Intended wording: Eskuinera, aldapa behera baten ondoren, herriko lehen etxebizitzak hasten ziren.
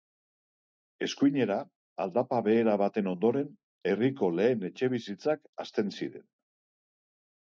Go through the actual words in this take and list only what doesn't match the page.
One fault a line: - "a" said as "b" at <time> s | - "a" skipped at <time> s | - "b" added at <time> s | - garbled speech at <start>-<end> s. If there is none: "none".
none